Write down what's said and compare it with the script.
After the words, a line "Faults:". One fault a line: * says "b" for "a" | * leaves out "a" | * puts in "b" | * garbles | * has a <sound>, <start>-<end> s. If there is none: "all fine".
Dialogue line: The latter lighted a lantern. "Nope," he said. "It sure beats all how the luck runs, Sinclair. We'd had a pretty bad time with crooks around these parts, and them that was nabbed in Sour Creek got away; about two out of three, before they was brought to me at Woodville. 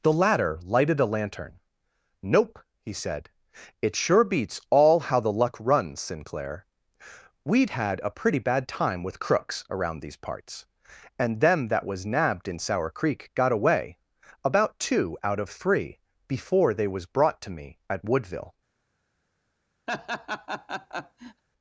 The latter lighted a lantern. "Nope," he said. "It sure beats all how the luck runs, Sinclair. We'd had a pretty bad time with crooks around these parts, and them that was nabbed in Sour Creek got away; about two out of three, before they was brought to me at Woodville.
Faults:
* has a laugh, 19.9-21.4 s